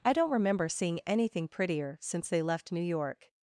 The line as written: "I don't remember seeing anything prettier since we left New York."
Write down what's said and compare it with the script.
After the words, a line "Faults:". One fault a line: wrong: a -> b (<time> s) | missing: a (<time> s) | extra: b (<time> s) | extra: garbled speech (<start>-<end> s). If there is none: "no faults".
"I don't remember seeing anything prettier since they left New York."
Faults:
wrong: we -> they (2.3 s)